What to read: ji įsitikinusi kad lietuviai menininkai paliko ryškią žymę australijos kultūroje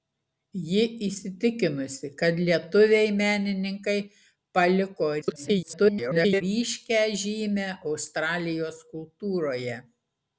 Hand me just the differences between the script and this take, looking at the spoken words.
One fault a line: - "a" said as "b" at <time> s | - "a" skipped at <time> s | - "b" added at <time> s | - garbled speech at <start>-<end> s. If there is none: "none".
- garbled speech at 5.2-6.4 s